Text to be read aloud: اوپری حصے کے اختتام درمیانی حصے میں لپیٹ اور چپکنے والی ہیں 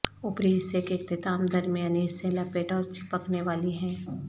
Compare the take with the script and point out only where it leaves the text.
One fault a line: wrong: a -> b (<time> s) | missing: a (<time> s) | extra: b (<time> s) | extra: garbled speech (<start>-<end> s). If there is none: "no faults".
missing: میں (2.3 s)